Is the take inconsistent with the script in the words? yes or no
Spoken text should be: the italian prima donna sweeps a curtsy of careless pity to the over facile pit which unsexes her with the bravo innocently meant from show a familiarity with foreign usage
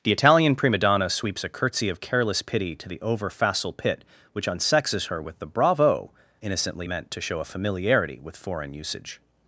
yes